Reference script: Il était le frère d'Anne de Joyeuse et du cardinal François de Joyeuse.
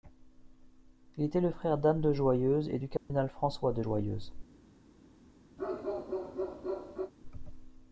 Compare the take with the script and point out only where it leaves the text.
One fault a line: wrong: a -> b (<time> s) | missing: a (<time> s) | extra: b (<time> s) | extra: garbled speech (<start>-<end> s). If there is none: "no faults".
no faults